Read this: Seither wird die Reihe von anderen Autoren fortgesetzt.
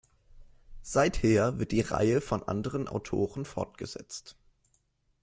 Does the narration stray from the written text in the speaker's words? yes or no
no